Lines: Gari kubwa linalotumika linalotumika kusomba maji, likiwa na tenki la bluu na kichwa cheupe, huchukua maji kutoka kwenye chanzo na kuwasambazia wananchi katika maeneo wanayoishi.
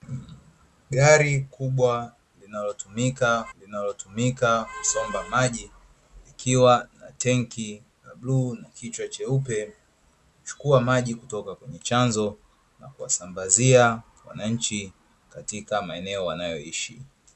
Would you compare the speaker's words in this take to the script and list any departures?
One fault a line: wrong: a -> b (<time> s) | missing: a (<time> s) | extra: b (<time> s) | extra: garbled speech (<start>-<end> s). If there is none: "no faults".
no faults